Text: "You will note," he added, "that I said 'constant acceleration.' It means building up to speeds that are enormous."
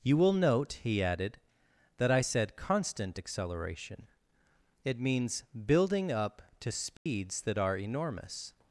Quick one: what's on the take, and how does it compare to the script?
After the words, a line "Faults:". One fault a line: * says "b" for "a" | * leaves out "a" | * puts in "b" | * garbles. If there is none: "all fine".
"You will note," he added, "that I said 'constant acceleration.' It means building up to speeds that are enormous."
Faults:
all fine